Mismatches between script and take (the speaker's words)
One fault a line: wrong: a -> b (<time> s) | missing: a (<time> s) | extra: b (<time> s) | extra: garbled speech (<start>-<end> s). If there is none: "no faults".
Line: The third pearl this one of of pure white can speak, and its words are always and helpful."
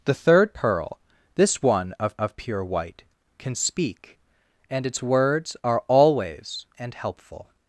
no faults